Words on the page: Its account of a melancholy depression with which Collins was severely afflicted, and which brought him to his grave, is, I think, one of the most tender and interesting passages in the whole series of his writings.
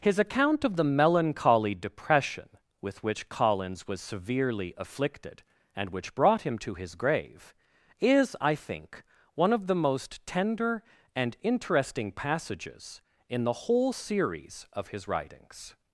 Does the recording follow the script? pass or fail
fail